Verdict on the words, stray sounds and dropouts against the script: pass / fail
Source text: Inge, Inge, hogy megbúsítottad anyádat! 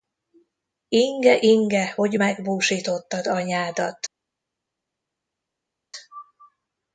pass